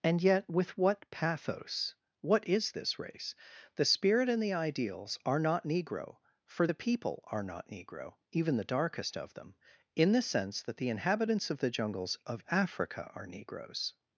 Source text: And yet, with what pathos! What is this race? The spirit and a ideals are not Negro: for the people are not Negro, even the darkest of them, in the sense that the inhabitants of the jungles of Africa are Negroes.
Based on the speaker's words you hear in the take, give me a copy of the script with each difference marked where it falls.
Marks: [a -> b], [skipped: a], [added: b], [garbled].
And yet, with what pathos! What is this race? The spirit and [a -> the] ideals are not Negro: for the people are not Negro, even the darkest of them, in the sense that the inhabitants of the jungles of Africa are Negroes.